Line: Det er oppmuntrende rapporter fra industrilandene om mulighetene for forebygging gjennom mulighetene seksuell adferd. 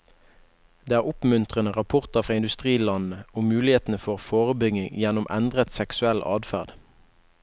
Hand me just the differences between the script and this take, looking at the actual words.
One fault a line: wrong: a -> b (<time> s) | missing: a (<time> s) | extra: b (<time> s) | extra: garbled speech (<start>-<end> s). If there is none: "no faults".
wrong: mulighetene -> endret (5.4 s)